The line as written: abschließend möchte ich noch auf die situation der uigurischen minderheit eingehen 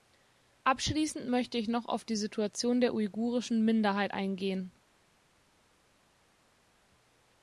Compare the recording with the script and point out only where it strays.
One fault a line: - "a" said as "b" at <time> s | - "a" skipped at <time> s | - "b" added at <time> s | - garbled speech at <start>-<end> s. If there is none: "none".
none